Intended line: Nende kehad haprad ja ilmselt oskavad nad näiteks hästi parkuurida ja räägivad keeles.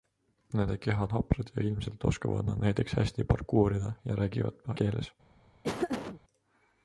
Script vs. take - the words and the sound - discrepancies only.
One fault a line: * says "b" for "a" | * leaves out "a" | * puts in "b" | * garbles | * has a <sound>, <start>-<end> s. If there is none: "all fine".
* has a laugh, 5.6-6.2 s